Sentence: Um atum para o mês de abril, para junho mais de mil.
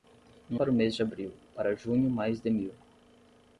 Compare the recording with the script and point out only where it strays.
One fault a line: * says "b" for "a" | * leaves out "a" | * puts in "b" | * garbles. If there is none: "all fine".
* leaves out "atum"